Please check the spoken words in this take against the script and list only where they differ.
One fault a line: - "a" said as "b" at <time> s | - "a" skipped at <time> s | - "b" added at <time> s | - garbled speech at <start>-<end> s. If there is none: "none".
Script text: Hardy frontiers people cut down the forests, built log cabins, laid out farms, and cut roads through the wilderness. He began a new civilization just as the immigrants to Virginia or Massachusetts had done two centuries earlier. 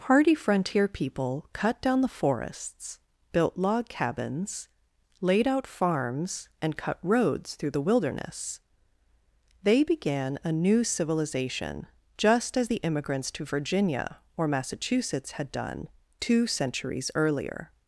- "frontiers" said as "frontier" at 0.3 s
- "He" said as "They" at 9.6 s